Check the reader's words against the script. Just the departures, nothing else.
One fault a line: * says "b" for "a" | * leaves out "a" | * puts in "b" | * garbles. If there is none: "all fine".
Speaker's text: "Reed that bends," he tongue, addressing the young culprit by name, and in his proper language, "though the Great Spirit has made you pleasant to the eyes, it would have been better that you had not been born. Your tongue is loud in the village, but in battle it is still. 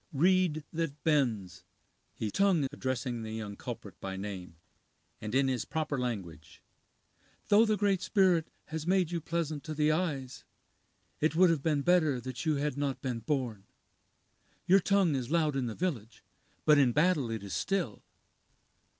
all fine